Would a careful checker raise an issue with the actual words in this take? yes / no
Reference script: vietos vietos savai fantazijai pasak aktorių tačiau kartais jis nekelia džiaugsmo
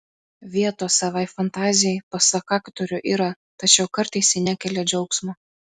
yes